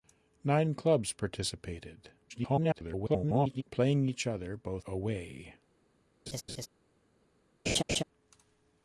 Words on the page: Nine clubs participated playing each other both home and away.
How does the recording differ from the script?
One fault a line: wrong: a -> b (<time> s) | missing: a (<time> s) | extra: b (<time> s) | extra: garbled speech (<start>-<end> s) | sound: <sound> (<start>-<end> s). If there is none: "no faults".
extra: garbled speech (2.3-3.6 s)
missing: home and (4.8 s)
sound: laugh (6.3-6.7 s)
sound: laugh (7.7-8.0 s)